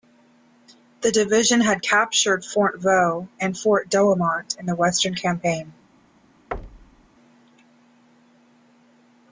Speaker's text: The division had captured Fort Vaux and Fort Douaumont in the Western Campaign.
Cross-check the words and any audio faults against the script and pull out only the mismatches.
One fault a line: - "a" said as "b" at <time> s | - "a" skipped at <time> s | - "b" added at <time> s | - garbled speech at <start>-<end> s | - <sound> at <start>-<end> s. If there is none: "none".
- thud at 6.5-7.1 s